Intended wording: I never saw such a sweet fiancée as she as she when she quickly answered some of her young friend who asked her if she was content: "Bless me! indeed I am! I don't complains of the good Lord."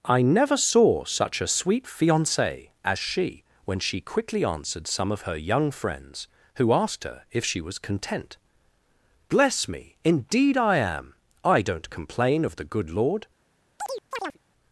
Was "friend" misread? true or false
true